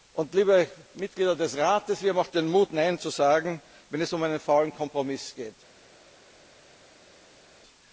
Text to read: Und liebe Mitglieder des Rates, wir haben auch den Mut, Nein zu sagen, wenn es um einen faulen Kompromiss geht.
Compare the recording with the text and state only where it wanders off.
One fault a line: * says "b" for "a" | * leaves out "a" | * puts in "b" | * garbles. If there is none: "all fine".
all fine